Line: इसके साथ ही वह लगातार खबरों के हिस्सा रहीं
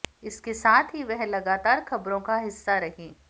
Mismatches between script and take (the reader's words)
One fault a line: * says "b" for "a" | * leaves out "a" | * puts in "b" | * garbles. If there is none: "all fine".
* says "का" for "के"